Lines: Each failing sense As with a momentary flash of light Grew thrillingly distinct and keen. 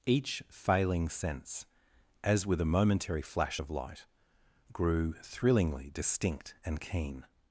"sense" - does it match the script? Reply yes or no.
yes